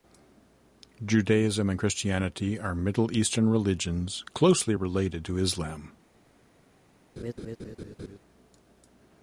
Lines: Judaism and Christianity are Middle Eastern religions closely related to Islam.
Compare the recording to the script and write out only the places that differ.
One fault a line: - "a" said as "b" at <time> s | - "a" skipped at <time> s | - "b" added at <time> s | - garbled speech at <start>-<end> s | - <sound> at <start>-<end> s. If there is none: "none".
- laugh at 7.2-8.2 s